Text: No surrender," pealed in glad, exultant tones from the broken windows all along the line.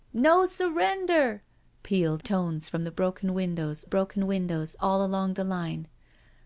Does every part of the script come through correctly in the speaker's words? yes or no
no